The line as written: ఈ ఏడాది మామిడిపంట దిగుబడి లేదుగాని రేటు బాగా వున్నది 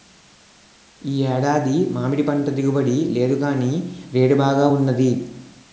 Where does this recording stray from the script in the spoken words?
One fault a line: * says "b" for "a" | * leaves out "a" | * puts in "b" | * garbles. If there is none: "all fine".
all fine